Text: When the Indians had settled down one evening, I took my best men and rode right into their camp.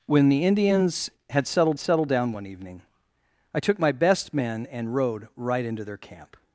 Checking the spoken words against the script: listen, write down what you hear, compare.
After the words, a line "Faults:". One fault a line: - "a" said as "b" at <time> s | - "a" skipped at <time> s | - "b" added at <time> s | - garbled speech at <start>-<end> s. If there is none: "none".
When the Indians had settled settled down one evening, I took my best men and rode right into their camp.
Faults:
- "settled" added at 1.8 s